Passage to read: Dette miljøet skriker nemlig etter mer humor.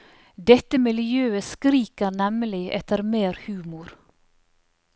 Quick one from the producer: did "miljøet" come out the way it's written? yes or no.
yes